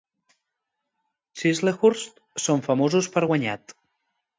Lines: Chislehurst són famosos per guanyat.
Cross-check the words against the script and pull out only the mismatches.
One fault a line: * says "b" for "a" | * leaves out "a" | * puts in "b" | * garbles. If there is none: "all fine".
all fine